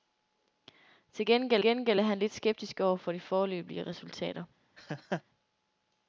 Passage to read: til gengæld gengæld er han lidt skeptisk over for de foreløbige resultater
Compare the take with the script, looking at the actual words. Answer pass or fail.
pass